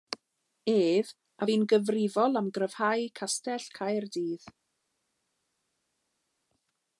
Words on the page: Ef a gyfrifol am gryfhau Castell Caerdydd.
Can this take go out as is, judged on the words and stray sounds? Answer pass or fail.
fail